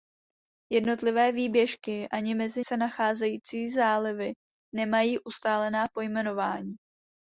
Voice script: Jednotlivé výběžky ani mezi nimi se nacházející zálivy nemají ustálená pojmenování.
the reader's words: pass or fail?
fail